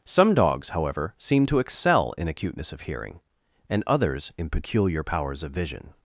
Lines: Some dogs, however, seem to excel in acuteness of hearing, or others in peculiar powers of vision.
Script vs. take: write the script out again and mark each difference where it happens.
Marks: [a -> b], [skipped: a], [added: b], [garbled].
Some dogs, however, seem to excel in acuteness of hearing, [or -> and] others in peculiar powers of vision.